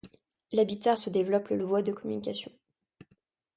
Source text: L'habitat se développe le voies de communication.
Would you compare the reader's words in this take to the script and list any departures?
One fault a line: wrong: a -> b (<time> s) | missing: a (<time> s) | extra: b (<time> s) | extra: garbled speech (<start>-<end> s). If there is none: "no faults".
no faults